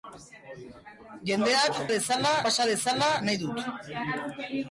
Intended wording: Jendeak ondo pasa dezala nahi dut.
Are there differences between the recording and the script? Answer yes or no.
yes